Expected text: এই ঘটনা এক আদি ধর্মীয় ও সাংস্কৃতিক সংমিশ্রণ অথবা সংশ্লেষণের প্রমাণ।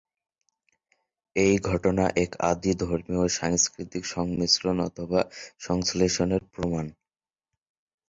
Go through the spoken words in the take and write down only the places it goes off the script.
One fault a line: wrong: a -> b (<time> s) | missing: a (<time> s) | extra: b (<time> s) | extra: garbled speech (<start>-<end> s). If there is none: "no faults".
no faults